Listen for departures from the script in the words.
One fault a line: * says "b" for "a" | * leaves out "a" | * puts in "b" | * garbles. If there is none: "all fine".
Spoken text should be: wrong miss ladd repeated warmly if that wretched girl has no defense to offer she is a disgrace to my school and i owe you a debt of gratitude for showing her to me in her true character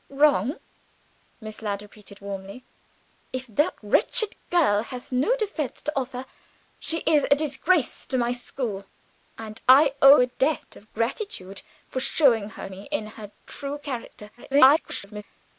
* leaves out "you"
* leaves out "to"
* garbles